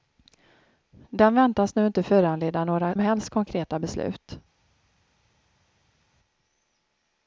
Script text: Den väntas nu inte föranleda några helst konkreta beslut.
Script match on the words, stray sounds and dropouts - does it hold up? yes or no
yes